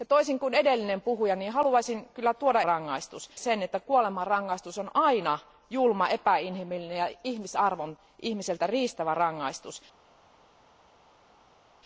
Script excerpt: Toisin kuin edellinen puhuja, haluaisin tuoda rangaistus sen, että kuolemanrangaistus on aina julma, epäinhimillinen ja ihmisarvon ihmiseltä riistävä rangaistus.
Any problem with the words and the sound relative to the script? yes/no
no